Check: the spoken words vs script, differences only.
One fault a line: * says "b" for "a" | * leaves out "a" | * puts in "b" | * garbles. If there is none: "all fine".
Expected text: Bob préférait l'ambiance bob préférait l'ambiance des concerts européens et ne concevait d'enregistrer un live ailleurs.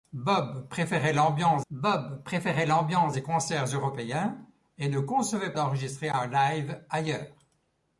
all fine